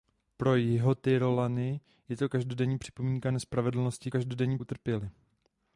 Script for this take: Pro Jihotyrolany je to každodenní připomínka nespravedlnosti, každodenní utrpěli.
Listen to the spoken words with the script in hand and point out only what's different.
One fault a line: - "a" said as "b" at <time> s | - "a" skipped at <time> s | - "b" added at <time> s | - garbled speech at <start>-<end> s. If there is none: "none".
none